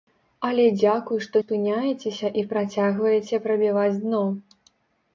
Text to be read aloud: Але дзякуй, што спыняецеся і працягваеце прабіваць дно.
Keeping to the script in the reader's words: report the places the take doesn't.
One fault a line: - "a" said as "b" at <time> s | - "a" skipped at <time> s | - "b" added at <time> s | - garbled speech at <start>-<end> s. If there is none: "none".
none